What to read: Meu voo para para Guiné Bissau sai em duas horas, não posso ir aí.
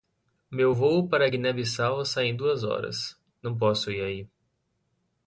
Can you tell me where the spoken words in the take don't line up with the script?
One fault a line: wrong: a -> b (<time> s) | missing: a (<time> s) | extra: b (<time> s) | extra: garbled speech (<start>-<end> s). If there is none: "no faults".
missing: para (1.3 s)